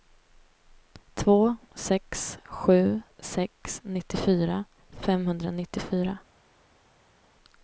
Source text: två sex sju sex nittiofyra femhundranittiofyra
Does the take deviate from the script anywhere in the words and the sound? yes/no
no